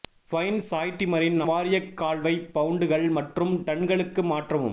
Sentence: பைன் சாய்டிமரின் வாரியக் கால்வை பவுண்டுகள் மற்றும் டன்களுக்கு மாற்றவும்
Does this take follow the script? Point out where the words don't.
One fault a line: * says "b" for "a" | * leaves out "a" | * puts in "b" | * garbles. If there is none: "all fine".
all fine